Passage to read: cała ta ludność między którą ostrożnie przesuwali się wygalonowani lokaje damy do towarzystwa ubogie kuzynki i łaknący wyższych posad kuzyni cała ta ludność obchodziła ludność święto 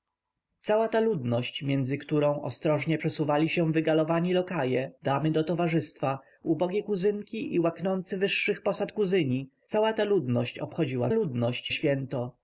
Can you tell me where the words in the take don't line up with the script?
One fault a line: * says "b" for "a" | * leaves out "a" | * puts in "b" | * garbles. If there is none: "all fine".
all fine